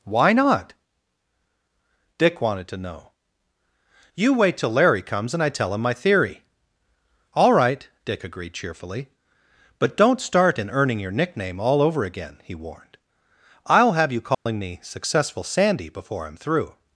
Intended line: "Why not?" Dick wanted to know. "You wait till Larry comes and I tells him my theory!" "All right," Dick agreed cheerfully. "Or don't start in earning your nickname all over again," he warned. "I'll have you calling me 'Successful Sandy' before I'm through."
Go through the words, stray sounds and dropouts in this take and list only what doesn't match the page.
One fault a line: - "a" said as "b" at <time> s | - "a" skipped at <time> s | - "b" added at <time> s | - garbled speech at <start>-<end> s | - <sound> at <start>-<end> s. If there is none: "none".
- "tells" said as "tell" at 5.5 s
- "Or" said as "But" at 9.8 s
- dropout at 14.3-14.5 s